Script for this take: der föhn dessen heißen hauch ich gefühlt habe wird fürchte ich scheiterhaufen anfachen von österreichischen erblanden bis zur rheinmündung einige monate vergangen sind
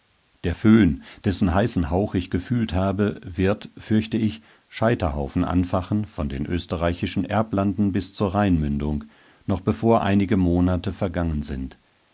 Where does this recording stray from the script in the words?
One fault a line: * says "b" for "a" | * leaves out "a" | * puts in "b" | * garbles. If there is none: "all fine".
* puts in "den"
* puts in "noch bevor"